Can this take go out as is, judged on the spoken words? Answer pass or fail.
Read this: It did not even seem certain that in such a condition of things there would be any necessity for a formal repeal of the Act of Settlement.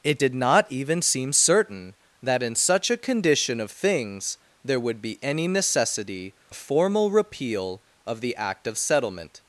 fail